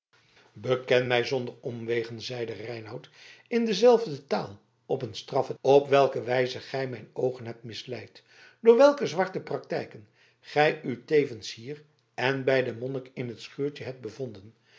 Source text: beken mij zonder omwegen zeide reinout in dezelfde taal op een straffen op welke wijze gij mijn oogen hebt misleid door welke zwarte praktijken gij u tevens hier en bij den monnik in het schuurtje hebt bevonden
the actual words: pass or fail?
pass